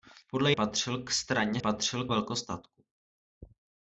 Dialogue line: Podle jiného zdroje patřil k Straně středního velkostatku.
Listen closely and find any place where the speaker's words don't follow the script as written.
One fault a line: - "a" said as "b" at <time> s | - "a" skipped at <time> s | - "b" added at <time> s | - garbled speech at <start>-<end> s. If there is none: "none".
- "jiného zdroje" skipped at 0.5 s
- "středního" said as "patřil" at 1.6 s